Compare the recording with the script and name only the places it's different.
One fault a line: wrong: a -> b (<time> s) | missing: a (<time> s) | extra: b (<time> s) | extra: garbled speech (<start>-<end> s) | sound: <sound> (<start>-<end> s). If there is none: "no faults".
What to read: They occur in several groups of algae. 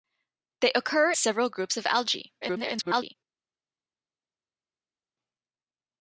missing: in (1.1 s)
extra: garbled speech (2.4-3.2 s)